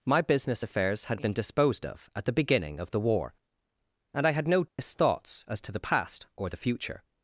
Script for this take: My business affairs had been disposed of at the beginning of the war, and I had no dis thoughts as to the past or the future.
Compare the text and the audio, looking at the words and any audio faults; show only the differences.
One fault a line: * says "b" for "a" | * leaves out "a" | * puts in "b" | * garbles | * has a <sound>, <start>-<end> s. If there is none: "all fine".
* has a dropout, 4.7-4.8 s